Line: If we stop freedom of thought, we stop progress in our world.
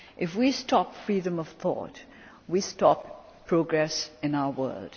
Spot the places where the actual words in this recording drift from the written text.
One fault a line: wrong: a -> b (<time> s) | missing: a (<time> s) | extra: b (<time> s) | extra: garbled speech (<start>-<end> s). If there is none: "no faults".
no faults